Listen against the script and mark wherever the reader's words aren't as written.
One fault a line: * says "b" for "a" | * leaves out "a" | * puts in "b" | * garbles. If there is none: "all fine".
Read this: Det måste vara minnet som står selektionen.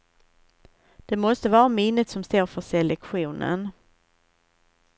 * puts in "för"